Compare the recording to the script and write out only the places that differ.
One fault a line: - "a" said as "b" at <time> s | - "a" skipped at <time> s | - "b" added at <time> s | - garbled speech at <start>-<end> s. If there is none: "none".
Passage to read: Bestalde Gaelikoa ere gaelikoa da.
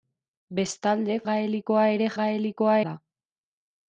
none